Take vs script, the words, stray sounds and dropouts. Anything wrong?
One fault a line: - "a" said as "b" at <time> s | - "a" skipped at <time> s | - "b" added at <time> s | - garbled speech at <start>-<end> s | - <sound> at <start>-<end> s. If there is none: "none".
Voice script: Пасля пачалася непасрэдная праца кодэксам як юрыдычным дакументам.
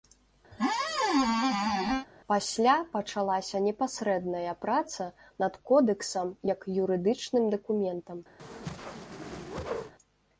- squeak at 0.5-2.1 s
- "над" added at 5.4 s
- whoosh at 8.4-9.9 s